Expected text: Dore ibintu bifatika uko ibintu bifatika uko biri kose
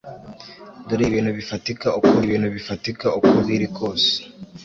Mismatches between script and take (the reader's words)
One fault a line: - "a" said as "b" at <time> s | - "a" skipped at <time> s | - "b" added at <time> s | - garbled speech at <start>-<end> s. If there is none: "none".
none